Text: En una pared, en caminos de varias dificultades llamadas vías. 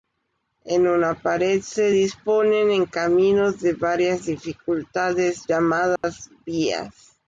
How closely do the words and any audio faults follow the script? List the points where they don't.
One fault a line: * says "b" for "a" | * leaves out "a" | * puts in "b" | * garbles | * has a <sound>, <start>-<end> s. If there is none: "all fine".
* puts in "se disponen"
* has a dropout, 6.0-6.0 s